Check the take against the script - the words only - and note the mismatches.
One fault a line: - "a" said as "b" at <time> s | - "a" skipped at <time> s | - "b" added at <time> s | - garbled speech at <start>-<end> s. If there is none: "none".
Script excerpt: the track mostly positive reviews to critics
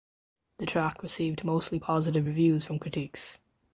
- "received" added at 1.0 s
- "to" said as "from" at 2.6 s